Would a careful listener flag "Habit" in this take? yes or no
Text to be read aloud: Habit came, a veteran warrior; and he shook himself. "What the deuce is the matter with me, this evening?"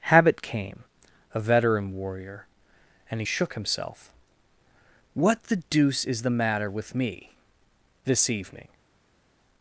no